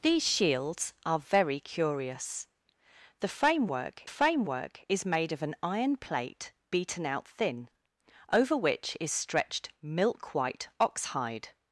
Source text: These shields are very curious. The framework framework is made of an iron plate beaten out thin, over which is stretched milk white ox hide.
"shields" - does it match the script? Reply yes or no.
yes